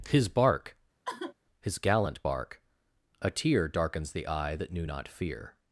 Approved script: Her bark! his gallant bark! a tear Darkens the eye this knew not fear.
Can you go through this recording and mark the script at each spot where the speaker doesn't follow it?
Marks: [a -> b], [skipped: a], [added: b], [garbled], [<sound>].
[Her -> His] bark! [sigh] his gallant bark! a tear Darkens the eye [this -> that] knew not fear.